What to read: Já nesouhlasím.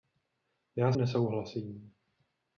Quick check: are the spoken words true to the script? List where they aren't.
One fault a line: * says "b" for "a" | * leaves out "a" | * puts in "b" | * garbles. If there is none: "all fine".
all fine